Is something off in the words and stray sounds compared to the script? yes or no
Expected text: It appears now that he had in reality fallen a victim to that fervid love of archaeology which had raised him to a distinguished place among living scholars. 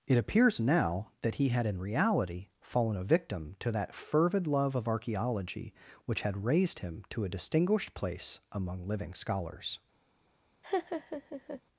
yes